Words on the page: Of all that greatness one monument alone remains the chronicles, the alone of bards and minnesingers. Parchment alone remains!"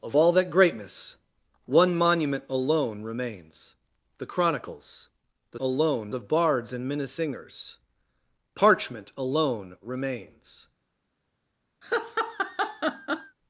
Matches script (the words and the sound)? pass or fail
fail